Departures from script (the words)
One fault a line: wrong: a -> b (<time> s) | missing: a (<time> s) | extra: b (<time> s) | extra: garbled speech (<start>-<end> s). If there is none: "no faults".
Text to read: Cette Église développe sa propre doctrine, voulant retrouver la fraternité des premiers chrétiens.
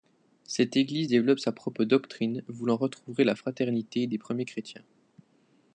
no faults